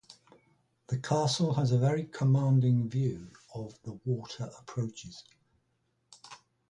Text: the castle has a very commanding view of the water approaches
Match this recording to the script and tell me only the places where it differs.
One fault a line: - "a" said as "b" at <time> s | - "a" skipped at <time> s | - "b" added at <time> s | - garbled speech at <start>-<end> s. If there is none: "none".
none